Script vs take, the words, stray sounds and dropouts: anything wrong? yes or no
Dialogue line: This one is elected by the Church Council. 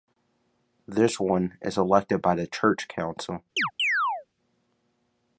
yes